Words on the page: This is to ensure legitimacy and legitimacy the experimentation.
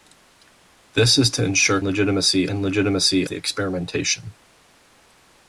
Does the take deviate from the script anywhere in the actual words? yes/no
no